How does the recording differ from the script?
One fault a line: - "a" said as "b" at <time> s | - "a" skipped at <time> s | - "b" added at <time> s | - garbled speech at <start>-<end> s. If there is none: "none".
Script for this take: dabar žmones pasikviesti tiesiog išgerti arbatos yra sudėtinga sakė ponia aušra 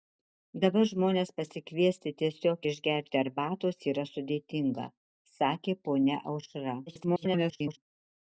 - garbled speech at 6.9-7.8 s